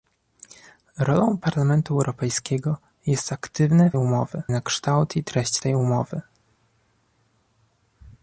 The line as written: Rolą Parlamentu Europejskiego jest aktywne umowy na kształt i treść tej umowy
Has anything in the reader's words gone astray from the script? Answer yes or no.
no